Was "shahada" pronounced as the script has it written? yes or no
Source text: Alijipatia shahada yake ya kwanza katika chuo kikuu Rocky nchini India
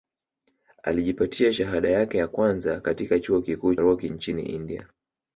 yes